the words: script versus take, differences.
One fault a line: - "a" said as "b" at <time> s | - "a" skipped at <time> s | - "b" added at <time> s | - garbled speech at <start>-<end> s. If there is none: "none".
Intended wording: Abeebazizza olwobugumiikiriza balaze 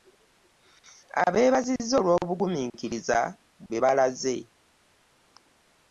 - "bwe" added at 3.7 s